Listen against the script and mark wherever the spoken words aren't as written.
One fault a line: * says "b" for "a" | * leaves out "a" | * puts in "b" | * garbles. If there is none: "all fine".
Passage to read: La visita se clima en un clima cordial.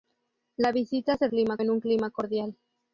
all fine